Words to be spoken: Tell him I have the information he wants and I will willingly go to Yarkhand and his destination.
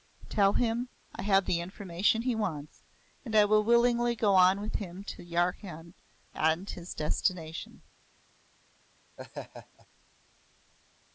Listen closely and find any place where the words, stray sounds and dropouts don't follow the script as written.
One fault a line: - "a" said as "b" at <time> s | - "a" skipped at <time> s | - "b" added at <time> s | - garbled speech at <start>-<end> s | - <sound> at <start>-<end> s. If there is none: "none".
- "on with him" added at 4.3 s
- laugh at 9.2-9.9 s